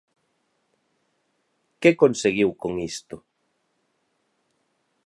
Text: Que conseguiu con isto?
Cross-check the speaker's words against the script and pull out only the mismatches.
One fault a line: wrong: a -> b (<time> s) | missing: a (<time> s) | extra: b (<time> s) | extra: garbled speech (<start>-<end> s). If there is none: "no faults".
no faults